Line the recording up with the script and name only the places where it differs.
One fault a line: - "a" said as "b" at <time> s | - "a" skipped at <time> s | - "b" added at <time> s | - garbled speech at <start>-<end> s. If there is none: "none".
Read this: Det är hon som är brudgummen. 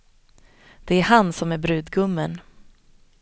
- "hon" said as "han" at 1.0 s